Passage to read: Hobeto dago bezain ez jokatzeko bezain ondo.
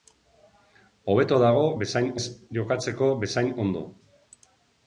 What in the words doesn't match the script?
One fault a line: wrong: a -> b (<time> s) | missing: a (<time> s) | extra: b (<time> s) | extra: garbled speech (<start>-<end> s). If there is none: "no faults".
no faults